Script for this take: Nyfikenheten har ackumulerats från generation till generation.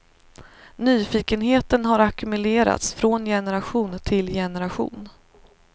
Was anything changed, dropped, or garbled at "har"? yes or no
no